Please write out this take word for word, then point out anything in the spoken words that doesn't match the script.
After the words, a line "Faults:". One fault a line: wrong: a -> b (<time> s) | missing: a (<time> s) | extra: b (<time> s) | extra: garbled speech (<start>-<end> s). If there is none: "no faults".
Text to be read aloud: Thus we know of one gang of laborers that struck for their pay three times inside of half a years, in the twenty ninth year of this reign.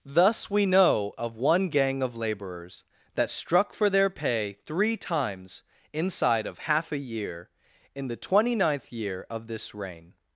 Thus we know of one gang of laborers that struck for their pay three times inside of half a year, in the twenty ninth year of this reign.
Faults:
wrong: years -> year (7.0 s)